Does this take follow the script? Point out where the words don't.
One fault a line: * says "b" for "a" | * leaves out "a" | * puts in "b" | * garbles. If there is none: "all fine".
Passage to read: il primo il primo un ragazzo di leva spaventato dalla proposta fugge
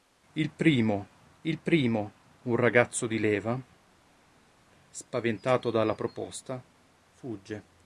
all fine